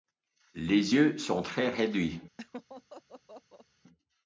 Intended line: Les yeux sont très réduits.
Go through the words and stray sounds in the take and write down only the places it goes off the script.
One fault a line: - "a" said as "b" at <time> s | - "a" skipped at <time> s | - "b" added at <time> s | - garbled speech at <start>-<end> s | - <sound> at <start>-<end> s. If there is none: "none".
- laugh at 2.4-3.7 s